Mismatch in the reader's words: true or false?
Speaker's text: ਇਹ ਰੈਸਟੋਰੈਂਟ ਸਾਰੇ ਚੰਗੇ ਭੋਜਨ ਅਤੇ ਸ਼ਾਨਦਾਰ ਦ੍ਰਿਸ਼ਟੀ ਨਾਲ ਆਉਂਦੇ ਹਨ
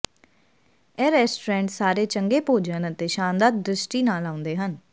false